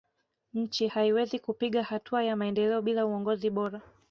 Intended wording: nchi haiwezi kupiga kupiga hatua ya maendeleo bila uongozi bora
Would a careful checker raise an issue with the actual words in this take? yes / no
yes